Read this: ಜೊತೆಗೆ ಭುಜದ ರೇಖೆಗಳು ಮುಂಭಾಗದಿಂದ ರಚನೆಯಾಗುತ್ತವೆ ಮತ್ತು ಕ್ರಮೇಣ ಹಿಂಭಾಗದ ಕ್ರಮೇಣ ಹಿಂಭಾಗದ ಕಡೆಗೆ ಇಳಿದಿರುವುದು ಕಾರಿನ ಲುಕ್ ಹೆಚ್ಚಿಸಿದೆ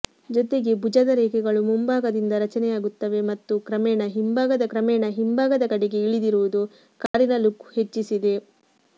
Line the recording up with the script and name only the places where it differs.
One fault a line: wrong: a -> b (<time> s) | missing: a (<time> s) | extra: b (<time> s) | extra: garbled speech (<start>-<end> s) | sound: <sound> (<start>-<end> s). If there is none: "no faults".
sound: dropout (7.1-7.1 s)